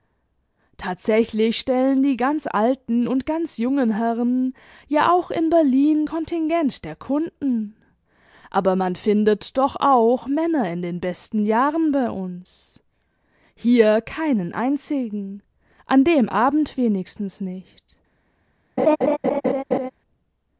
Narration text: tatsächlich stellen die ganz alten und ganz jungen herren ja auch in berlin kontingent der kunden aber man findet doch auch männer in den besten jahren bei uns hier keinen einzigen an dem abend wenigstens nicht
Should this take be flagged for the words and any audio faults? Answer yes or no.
yes